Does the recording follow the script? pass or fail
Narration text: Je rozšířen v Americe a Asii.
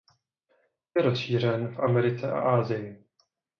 pass